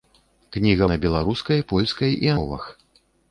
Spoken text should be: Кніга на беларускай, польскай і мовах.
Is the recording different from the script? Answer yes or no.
no